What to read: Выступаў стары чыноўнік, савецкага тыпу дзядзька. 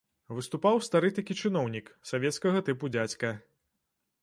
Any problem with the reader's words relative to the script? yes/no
yes